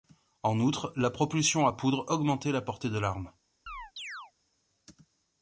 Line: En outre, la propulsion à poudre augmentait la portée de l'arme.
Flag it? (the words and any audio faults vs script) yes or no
yes